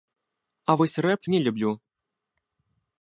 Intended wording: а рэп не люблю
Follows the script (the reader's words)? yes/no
no